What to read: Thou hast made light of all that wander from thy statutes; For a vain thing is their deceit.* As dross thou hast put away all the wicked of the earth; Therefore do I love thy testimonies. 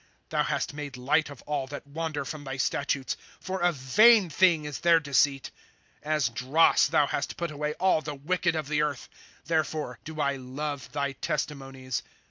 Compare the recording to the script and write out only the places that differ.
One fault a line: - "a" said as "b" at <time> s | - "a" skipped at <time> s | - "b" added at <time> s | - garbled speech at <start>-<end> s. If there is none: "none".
none